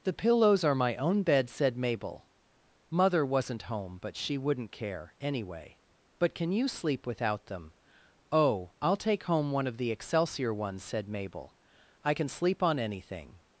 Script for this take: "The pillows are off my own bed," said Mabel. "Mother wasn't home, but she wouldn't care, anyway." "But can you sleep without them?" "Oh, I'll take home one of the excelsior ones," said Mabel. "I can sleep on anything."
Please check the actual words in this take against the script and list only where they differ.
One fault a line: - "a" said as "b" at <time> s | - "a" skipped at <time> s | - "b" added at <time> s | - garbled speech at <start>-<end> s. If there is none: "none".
- "off" skipped at 0.7 s